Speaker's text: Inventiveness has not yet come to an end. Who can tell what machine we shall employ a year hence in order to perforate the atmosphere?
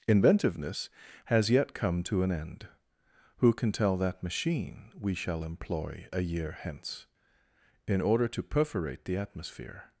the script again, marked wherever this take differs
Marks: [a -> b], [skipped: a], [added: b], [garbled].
Inventiveness has [skipped: not] yet come to an end. Who can tell [what -> that] machine we shall employ a year hence in order to perforate the atmosphere?